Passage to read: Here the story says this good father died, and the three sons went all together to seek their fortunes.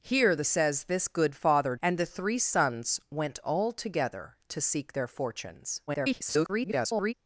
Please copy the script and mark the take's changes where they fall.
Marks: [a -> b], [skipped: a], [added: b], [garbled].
Here the [skipped: story] says this good father [skipped: died,] and the three sons went all together to seek their fortunes. [garbled]